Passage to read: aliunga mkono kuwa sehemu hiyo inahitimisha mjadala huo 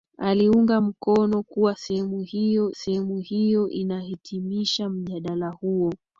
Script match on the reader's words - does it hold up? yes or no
no